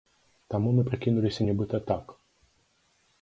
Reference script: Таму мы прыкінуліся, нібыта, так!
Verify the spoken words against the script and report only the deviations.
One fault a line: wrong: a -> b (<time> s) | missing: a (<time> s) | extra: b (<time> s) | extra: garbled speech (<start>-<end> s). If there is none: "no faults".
no faults